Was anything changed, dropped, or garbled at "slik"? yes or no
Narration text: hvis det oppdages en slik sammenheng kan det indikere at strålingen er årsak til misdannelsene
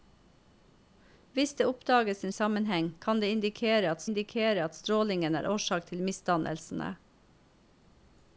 yes